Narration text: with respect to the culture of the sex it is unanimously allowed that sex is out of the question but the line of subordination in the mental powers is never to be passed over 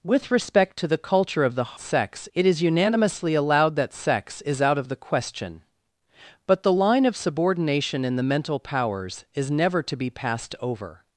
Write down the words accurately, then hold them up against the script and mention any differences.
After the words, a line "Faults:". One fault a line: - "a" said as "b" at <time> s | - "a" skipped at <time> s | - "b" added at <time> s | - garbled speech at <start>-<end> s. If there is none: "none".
with respect to the culture of the sex it is unanimously allowed that sex is out of the question but the line of subordination in the mental powers is never to be passed over
Faults:
none